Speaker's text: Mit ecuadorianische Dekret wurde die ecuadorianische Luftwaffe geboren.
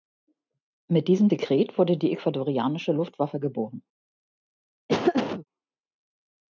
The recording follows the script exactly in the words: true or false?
false